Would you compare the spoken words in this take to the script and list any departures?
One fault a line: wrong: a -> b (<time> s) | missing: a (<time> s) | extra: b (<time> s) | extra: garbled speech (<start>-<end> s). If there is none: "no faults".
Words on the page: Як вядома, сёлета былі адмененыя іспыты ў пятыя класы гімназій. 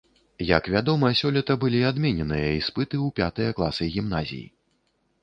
no faults